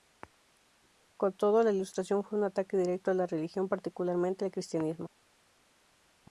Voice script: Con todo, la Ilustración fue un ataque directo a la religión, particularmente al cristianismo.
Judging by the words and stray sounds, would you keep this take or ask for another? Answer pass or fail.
pass